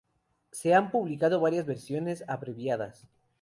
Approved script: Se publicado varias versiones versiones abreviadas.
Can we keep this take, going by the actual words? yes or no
no